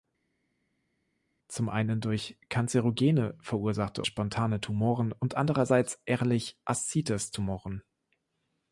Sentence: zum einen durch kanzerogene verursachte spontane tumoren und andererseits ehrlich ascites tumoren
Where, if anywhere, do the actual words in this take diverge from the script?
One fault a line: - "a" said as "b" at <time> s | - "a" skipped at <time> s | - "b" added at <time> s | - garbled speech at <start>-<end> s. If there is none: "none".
none